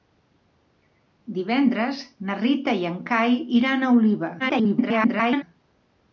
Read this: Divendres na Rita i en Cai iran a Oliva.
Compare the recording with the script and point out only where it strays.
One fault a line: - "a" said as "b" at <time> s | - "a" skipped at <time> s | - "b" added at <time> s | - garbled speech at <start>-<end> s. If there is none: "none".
- garbled speech at 4.4-5.4 s